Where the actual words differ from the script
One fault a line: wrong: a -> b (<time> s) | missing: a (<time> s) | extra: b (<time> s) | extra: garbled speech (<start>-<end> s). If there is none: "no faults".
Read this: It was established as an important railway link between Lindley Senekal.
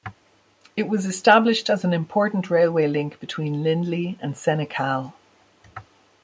extra: and (4.2 s)